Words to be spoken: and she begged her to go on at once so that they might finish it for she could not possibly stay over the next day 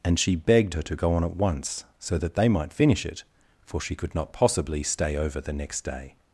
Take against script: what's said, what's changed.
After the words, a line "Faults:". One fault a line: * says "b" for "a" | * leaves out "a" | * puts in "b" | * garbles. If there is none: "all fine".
and she begged her to go on at once so that they might finish it for she could not possibly stay over the next day
Faults:
all fine